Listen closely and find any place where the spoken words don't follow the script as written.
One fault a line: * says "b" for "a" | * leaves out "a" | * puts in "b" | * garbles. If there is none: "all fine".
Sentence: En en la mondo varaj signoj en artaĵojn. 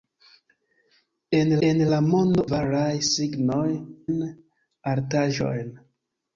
all fine